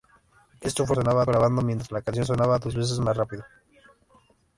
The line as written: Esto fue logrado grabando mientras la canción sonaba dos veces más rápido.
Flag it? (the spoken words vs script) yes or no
yes